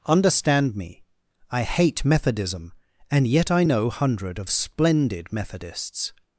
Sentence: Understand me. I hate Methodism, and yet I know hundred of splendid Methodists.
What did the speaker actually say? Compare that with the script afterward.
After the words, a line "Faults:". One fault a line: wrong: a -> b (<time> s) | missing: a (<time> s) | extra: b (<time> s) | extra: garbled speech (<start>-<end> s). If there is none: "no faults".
Understand me. I hate Methodism, and yet I know hundred of splendid Methodists.
Faults:
no faults